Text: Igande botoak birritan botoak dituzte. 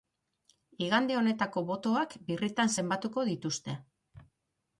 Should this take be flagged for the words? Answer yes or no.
yes